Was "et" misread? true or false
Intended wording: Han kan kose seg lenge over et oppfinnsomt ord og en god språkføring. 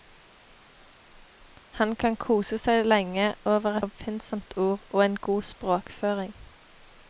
true